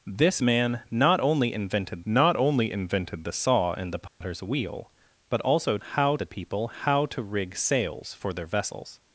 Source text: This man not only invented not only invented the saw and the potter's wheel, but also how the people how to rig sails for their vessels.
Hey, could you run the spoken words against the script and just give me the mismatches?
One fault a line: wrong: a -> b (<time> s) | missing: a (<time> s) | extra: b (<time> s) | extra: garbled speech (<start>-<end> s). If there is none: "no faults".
no faults